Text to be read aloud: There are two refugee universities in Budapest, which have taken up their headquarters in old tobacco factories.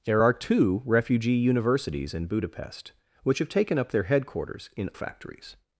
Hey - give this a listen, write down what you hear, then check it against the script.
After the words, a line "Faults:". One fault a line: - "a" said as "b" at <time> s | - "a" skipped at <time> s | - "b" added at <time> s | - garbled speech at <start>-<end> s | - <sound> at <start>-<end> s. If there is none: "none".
There are two refugee universities in Budapest, which have taken up their headquarters in factories.
Faults:
- "old tobacco" skipped at 4.9 s